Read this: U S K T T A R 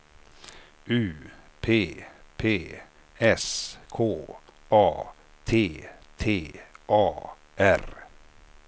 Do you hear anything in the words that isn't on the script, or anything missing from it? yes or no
yes